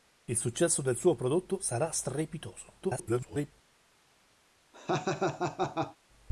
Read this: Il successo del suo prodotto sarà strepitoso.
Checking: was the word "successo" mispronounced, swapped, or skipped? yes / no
no